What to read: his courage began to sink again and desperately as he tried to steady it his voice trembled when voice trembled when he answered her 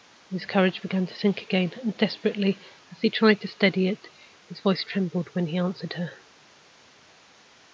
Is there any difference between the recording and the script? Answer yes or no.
yes